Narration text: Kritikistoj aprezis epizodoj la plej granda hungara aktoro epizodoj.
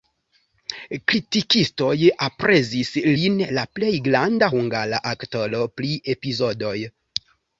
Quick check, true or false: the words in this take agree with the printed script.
false